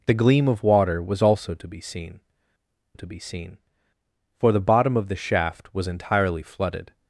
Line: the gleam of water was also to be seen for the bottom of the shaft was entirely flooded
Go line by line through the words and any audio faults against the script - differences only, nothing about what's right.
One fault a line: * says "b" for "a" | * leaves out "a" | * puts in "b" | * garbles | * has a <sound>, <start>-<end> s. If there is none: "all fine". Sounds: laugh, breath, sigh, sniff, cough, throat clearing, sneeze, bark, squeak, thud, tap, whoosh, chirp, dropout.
* puts in "to be seen"